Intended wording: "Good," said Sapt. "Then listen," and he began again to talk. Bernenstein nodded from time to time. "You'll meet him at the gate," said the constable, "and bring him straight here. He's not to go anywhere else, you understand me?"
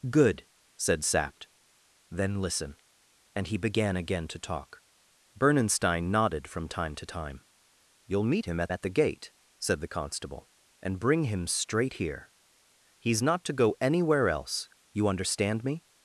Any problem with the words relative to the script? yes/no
yes